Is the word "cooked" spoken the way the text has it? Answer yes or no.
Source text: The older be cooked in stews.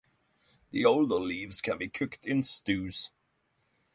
yes